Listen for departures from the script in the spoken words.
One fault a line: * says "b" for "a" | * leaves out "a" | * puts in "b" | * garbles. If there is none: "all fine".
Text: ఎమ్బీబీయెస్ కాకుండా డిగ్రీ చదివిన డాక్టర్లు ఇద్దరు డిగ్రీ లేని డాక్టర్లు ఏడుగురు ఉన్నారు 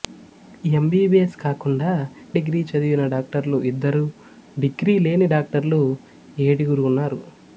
all fine